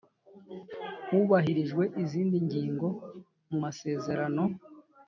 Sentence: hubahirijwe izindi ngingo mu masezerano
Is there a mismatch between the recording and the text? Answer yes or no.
no